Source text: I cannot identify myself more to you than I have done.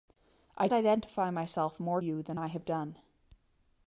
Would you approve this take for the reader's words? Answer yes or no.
no